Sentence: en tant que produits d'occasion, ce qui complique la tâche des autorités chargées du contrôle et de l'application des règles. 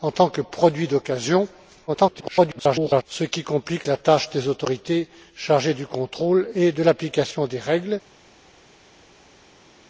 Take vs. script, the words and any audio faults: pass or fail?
fail